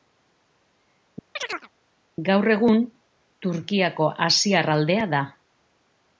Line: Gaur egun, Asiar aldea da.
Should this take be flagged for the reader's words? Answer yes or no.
yes